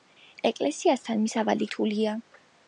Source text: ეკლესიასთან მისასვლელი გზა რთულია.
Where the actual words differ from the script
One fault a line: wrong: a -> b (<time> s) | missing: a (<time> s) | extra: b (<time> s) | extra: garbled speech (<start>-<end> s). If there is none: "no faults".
missing: გზა (1.7 s)